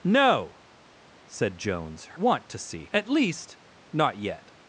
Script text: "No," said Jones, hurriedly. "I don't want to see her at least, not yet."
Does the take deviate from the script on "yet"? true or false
false